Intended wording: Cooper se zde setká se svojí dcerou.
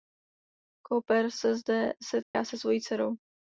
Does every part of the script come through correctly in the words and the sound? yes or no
no